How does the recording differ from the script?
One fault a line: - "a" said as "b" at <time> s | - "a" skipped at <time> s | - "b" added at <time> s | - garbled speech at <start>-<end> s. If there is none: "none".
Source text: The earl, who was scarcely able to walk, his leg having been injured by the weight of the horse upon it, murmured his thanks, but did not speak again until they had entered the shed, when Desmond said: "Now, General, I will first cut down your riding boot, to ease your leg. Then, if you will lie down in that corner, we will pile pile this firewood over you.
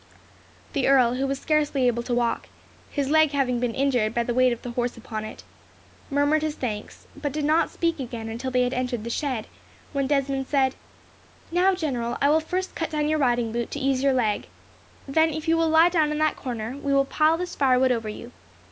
- "pile" skipped at 17.4 s